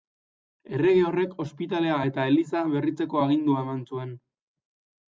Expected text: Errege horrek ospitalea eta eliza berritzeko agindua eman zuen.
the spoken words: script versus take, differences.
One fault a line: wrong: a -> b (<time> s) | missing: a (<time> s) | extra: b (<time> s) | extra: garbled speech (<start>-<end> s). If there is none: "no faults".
no faults